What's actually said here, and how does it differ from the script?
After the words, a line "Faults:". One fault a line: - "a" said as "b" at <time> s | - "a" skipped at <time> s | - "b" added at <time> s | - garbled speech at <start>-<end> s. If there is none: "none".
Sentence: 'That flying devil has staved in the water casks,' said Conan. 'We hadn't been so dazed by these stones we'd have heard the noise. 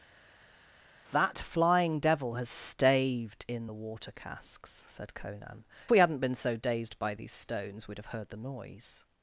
'That flying devil has staved in the water casks,' said Conan. 'We hadn't been so dazed by these stones we'd have heard the noise.
Faults:
none